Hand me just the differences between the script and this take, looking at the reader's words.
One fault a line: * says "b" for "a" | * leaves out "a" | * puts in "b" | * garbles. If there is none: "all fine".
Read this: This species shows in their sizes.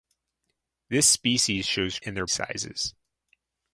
all fine